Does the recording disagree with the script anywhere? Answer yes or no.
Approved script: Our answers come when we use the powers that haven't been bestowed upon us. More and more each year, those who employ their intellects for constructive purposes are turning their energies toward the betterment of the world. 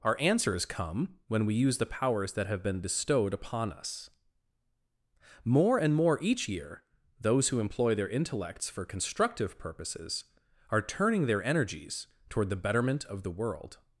yes